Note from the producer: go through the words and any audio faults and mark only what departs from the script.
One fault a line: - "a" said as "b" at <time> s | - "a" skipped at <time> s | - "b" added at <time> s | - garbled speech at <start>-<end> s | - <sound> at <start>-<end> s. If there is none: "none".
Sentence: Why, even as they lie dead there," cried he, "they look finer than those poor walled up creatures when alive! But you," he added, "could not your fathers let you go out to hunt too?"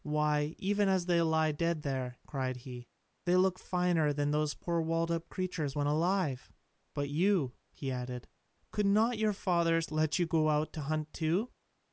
none